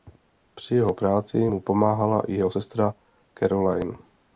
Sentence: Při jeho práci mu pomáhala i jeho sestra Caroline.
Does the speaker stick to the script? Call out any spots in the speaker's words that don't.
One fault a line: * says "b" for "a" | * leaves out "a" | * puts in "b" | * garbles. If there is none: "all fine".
all fine